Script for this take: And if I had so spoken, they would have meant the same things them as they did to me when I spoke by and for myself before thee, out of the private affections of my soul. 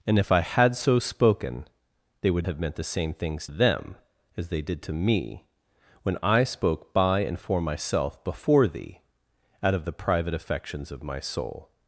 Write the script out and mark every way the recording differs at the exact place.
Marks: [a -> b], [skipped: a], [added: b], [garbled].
And if I had so spoken, they would have meant the same things them as they did to me when I spoke by and for myself before thee, out of the private affections of my soul.